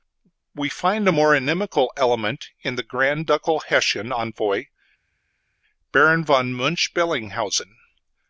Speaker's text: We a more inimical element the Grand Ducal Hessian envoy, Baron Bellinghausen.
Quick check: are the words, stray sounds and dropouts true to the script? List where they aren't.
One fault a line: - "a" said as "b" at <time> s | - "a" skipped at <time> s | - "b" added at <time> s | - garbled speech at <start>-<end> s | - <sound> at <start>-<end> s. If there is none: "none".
- "find" added at 0.7 s
- "in" added at 2.6 s
- "von Münch" added at 6.2 s